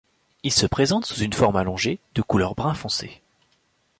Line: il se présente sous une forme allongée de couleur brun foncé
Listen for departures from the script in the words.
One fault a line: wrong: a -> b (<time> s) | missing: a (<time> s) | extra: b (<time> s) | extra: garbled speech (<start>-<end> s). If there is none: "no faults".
no faults